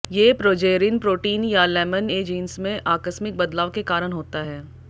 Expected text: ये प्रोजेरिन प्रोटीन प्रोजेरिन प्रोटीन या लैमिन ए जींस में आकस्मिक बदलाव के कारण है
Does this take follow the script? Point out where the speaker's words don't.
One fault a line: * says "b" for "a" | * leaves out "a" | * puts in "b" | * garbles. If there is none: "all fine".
* leaves out "प्रोजेरिन प्रोटीन"
* puts in "होता"